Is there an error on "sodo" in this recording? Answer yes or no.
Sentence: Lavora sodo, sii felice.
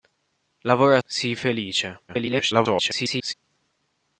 yes